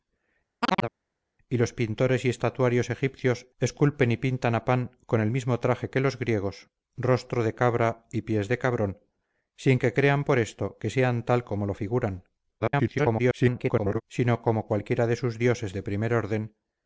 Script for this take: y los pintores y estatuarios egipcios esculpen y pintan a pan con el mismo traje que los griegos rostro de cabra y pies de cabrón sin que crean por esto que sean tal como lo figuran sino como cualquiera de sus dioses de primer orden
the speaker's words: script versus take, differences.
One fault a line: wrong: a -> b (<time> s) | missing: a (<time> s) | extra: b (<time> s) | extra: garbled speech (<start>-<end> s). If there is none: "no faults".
extra: garbled speech (12.6-14.0 s)